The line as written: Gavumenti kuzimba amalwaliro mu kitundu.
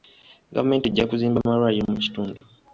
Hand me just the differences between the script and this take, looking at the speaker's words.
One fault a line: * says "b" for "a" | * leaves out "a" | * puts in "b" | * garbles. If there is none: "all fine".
* puts in "ejja"